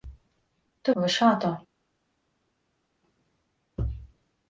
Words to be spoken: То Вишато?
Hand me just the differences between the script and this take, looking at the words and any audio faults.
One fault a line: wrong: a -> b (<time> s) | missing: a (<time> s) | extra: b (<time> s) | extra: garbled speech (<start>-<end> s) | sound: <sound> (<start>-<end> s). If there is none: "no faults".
no faults